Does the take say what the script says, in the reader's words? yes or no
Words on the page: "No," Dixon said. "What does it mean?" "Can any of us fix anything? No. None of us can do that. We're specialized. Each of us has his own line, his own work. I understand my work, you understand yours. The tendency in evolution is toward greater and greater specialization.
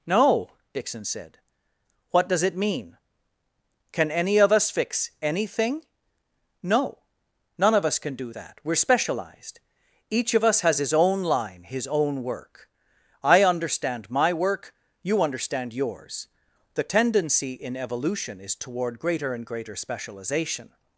yes